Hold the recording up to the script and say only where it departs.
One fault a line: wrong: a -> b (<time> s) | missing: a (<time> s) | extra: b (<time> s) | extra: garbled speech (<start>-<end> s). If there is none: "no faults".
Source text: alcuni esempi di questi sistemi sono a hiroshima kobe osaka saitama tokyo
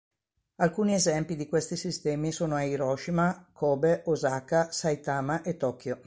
extra: e (5.4 s)